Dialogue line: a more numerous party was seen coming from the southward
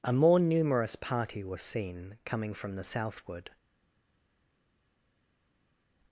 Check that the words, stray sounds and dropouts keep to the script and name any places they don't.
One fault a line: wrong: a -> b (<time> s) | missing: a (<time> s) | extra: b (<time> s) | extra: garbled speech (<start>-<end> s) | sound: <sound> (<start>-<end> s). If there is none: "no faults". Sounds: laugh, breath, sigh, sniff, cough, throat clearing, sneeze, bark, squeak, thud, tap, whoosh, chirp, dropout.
no faults